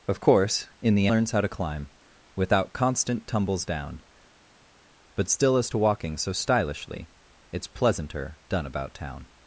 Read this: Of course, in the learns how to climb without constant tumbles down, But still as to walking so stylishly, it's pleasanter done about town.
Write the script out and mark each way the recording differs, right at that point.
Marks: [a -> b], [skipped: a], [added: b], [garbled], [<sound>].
Of course, in the learns how to climb without constant tumbles down, But still as to walking so stylishly, it's pleasanter done about town.